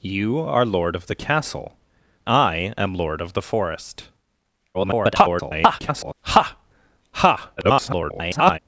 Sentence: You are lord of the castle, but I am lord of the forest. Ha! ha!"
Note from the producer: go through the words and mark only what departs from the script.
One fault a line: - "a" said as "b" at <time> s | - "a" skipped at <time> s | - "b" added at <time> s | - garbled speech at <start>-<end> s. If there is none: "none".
- "but" skipped at 1.8 s
- garbled speech at 4.7-6.1 s
- garbled speech at 7.6-8.6 s